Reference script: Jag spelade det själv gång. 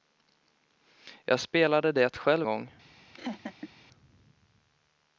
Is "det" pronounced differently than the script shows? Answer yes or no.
no